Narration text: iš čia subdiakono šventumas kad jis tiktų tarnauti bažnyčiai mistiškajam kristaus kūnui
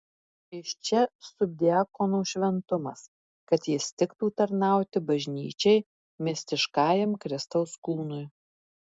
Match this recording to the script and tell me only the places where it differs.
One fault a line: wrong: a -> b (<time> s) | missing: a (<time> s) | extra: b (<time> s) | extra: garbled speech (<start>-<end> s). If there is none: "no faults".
no faults